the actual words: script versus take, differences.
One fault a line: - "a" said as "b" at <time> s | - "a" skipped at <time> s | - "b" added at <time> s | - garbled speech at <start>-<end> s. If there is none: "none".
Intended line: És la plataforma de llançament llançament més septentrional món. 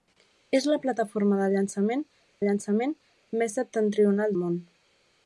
none